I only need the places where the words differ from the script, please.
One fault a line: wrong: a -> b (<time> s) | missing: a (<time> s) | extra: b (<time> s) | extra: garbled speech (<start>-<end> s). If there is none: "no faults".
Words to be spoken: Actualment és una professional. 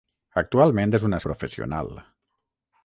no faults